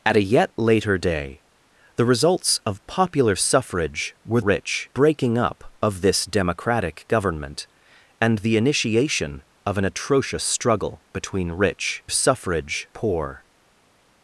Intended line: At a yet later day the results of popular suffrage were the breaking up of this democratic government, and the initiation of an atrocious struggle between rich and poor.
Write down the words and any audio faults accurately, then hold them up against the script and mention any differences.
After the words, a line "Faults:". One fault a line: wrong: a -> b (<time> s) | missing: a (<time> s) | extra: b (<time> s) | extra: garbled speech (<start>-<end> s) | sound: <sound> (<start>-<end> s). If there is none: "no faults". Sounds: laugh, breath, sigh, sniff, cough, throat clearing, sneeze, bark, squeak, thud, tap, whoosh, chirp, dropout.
At a yet later day the results of popular suffrage were rich breaking up of this democratic government, and the initiation of an atrocious struggle between rich suffrage poor.
Faults:
wrong: the -> rich (4.4 s)
wrong: and -> suffrage (12.1 s)